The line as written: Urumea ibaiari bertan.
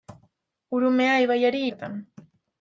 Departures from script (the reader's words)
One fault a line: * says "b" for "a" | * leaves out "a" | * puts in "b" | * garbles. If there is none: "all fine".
all fine